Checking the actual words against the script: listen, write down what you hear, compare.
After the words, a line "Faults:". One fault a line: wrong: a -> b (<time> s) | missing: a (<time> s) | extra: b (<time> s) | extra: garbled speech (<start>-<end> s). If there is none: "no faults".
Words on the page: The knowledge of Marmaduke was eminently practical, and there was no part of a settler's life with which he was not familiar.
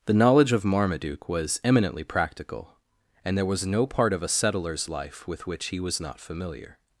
The knowledge of Marmaduke was eminently practical, and there was no part of a settler's life with which he was not familiar.
Faults:
no faults